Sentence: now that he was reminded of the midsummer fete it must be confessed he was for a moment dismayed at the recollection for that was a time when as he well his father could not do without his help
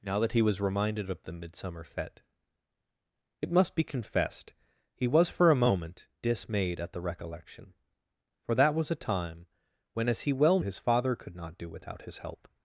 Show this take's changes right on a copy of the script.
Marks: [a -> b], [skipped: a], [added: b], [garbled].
now that he was reminded of the midsummer fete it must be confessed he was for a moment dismayed at the recollection for that was a time when as he well his father could not do without his help